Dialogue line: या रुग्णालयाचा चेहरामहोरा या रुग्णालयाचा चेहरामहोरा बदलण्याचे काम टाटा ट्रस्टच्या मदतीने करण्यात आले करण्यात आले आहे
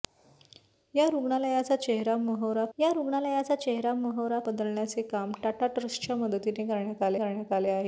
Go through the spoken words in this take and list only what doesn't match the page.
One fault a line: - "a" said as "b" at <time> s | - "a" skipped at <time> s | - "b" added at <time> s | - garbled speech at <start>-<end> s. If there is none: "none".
none